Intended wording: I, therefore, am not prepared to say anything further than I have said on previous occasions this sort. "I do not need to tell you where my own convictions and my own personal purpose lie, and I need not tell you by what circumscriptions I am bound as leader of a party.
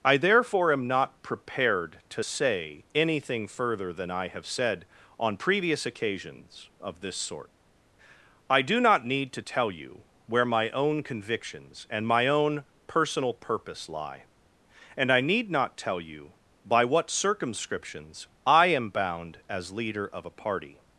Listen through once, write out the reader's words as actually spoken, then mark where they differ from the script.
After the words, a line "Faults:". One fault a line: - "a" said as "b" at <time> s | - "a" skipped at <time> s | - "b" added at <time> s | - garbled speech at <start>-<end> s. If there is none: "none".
I, therefore, am not prepared to say anything further than I have said on previous occasions of this sort. "I do not need to tell you where my own convictions and my own personal purpose lie, and I need not tell you by what circumscriptions I am bound as leader of a party.
Faults:
- "of" added at 6.8 s